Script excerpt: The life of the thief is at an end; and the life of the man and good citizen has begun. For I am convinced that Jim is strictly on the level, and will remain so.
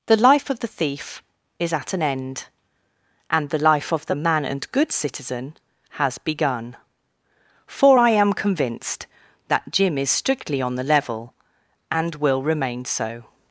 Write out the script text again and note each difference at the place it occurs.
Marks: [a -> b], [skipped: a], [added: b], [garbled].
The life of the thief is at an end; and the life of the man and good citizen has begun. For I am convinced that Jim is strictly on the level, and will remain so.